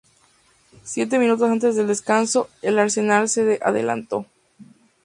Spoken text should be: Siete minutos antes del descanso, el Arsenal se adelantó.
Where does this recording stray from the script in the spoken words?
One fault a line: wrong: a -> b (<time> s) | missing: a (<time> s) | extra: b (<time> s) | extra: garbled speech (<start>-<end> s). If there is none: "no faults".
no faults